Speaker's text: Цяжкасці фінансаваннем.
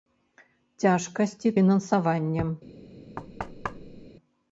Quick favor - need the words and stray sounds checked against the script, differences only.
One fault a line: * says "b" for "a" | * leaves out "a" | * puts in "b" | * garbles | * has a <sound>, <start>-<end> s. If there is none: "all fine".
* has a thud, 3.2-4.1 s